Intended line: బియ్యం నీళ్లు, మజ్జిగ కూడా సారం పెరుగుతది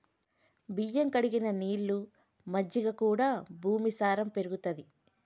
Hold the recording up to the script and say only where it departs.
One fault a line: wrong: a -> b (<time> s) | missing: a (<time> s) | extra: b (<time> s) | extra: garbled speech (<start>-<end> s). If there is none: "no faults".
extra: కడిగిన (1.1 s)
extra: భూమి (3.6 s)